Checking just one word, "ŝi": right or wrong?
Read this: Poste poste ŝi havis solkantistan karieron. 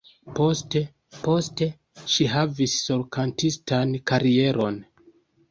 right